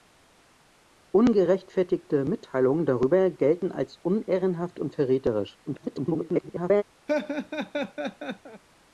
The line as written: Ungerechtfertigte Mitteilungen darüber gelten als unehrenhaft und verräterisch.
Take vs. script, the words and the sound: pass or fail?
fail